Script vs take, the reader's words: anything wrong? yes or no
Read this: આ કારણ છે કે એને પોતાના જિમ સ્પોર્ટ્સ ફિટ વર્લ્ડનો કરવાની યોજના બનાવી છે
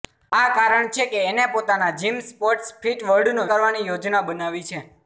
no